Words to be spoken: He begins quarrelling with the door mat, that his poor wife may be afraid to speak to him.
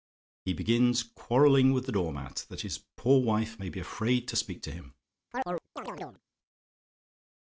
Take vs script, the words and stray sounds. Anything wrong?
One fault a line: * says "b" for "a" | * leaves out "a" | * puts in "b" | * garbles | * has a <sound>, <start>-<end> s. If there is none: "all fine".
* has a chirp, 5.3-6.2 s